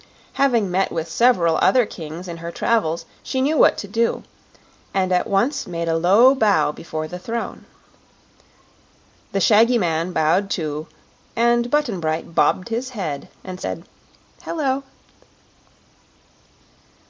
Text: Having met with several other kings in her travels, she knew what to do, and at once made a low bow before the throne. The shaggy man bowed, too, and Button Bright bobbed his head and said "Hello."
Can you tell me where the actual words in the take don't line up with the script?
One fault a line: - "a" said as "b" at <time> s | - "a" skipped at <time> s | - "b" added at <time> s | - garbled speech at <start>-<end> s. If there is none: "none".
none